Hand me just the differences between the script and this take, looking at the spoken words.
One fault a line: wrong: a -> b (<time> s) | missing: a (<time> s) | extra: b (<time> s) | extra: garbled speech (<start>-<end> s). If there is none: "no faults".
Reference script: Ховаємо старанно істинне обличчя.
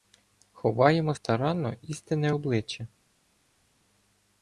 no faults